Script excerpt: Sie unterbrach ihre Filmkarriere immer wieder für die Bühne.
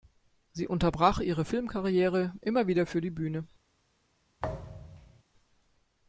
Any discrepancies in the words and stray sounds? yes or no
yes